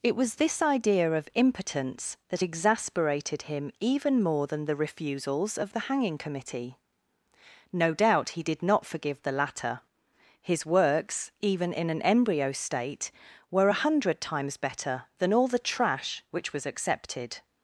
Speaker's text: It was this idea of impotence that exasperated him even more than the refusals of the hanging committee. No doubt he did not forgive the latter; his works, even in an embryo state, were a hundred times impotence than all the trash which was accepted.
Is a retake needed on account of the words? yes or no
yes